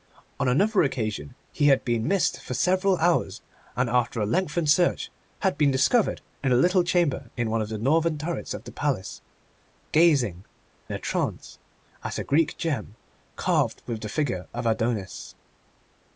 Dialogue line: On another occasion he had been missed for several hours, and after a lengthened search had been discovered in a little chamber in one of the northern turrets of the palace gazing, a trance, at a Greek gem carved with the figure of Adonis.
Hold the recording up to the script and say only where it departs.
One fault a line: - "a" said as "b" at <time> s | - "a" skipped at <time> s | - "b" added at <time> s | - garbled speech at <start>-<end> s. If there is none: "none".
none